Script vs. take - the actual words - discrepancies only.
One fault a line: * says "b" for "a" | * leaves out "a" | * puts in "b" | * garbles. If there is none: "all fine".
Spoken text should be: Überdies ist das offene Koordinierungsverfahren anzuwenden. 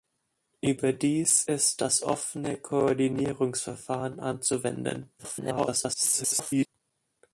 * garbles